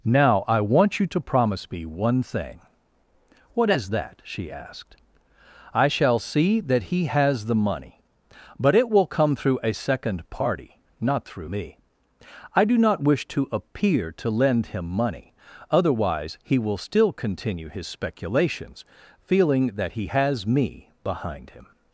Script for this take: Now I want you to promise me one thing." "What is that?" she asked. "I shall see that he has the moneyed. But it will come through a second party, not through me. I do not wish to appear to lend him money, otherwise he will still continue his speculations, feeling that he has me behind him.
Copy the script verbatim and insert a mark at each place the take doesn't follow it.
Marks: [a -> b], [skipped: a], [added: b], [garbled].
Now I want you to promise me one thing." "What is that?" she asked. "I shall see that he has the [moneyed. -> money] But it will come through a second party, not through me. I do not wish to appear to lend him money, otherwise he will still continue his speculations, feeling that he has me behind him.